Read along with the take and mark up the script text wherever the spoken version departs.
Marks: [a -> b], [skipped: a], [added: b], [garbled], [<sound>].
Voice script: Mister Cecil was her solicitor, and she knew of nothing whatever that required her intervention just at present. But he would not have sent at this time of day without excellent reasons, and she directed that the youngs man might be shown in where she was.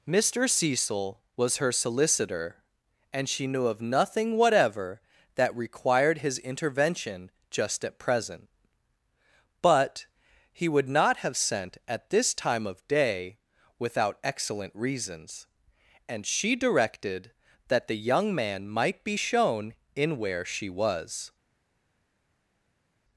Mister Cecil was her solicitor, and she knew of nothing whatever that required [her -> his] intervention just at present. But he would not have sent at this time of day without excellent reasons, and she directed that the [youngs -> young] man might be shown in where she was.